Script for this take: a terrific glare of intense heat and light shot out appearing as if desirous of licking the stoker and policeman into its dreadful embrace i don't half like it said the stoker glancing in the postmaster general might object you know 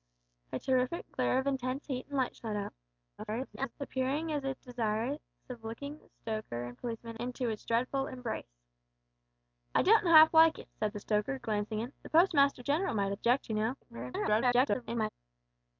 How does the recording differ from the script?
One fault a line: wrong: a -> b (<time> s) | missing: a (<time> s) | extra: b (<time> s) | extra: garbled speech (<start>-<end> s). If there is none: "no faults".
extra: garbled speech (3.2-3.7 s)
extra: garbled speech (13.8-15.1 s)